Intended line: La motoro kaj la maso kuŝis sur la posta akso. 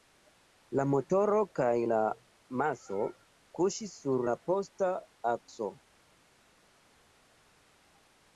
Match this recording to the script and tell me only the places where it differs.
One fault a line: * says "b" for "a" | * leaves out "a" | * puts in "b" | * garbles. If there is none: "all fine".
all fine